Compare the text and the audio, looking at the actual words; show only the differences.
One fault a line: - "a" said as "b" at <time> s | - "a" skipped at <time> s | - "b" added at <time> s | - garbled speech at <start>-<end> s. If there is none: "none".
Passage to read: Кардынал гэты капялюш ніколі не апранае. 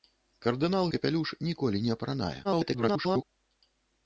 - "гэты" skipped at 0.9 s
- garbled speech at 2.4-3.2 s